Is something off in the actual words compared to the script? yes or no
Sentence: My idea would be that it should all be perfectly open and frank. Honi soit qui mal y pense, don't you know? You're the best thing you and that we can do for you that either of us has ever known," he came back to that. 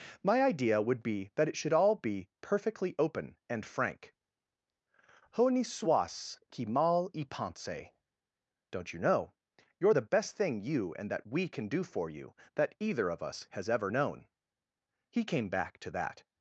no